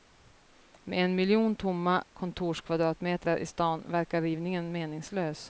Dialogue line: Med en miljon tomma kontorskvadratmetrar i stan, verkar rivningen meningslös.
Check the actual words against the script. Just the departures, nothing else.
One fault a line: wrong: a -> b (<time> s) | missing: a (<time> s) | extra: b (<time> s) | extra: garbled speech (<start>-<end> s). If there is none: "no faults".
no faults